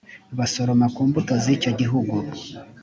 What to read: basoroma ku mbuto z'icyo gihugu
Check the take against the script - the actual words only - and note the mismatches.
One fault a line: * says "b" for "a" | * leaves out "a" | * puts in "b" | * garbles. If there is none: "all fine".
all fine